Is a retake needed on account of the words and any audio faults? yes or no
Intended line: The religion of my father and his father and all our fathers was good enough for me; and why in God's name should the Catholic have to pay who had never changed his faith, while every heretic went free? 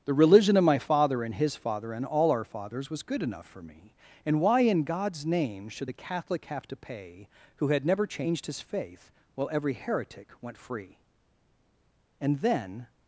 yes